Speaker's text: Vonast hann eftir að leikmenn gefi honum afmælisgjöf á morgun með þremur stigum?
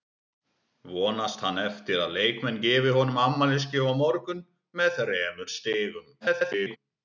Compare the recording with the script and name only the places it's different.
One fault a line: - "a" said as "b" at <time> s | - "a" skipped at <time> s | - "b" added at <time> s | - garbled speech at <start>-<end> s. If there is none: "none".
- garbled speech at 6.2-6.8 s